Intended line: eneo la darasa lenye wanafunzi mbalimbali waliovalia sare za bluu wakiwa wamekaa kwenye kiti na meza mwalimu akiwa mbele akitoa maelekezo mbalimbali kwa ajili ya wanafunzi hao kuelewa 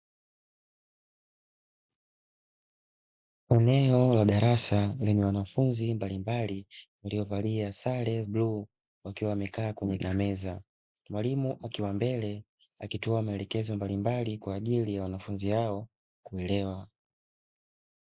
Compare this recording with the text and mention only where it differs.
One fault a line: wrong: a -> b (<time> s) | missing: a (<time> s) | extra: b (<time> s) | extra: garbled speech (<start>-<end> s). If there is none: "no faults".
missing: za (8.2 s)
missing: kiti (10.0 s)